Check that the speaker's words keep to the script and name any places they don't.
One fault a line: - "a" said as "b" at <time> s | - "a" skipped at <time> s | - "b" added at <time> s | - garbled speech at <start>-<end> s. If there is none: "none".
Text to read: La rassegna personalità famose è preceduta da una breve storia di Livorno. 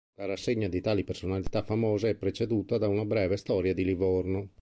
- "di tali" added at 0.7 s